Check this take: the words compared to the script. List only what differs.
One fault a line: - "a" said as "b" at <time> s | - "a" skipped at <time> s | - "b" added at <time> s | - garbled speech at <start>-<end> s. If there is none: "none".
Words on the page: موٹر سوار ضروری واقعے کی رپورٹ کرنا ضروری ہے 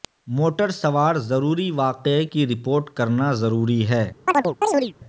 none